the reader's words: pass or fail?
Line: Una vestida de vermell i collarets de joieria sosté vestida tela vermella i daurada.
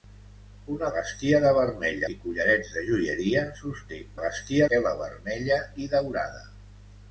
pass